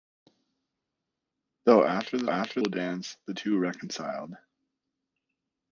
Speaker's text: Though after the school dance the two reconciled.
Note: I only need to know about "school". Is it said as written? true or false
false